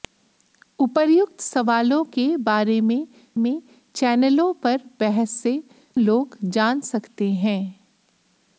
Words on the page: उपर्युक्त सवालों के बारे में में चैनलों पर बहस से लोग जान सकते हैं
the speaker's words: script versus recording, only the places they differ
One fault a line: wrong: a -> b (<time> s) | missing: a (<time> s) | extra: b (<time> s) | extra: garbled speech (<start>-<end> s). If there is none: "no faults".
no faults